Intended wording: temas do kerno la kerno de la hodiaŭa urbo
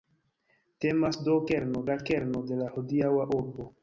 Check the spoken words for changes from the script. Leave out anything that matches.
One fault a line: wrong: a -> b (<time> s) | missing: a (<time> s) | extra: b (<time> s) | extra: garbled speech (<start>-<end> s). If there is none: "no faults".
no faults